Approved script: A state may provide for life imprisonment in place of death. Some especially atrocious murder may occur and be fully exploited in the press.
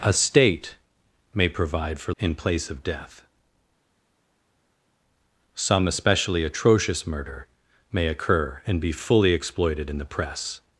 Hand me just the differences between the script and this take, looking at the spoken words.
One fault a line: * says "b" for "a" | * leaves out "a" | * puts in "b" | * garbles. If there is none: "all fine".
* leaves out "life imprisonment"